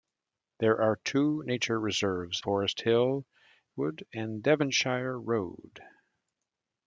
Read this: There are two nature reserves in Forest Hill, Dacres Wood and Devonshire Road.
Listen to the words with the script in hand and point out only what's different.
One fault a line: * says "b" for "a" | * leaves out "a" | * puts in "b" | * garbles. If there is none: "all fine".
* leaves out "in"
* leaves out "Dacres"